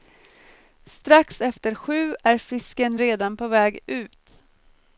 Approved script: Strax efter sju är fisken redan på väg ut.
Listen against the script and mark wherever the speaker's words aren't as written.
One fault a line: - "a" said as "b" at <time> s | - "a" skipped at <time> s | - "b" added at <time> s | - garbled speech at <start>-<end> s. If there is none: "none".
none